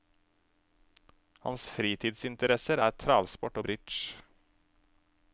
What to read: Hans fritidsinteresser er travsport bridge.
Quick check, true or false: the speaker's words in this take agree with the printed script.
true